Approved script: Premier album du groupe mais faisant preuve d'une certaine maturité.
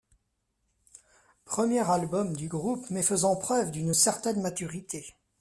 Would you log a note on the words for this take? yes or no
no